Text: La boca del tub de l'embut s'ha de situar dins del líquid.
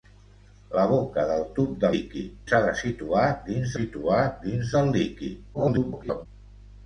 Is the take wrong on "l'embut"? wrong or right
wrong